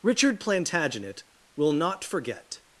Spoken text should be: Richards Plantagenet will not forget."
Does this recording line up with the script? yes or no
no